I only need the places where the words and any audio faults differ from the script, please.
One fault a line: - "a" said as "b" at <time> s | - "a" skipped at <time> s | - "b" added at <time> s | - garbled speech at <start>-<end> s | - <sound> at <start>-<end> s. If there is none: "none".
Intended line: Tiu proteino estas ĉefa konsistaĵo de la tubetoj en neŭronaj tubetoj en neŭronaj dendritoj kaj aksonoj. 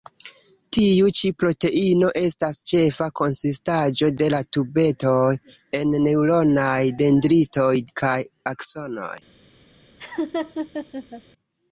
- "ĉi" added at 1.2 s
- "tubetoj en neŭronaj" skipped at 6.8 s
- laugh at 10.0-11.2 s